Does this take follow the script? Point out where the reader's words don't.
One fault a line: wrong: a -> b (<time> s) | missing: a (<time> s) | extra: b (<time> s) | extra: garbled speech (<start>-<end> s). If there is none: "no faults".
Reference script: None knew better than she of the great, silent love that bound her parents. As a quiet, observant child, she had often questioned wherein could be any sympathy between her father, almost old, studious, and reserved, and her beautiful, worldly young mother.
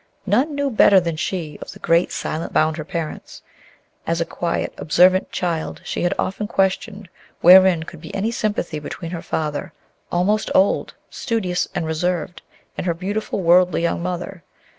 missing: love that (2.5 s)